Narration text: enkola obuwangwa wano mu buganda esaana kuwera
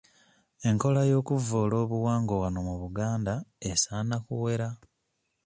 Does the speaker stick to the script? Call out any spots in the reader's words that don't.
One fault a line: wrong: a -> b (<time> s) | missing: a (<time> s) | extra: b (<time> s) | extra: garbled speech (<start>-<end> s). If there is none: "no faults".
extra: y'okuvvoola (1.1 s)